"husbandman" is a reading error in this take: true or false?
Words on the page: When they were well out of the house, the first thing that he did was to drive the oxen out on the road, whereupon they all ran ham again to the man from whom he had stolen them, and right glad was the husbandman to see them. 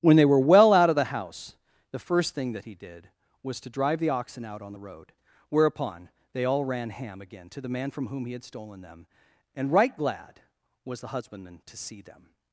false